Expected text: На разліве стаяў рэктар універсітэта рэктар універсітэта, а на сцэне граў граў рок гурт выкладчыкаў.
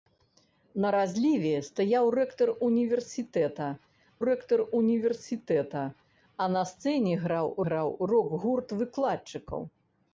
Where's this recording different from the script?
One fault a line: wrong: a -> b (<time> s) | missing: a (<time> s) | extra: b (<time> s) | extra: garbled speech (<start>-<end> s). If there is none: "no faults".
no faults